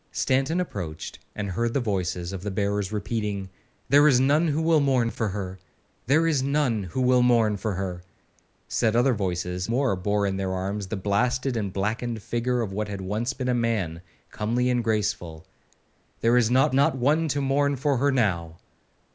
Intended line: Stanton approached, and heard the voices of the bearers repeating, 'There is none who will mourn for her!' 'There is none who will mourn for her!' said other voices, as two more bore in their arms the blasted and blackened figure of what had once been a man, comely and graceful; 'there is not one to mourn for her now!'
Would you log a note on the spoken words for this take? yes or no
yes